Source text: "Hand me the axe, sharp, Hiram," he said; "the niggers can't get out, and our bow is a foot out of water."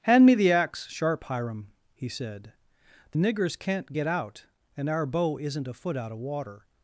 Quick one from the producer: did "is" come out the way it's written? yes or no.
no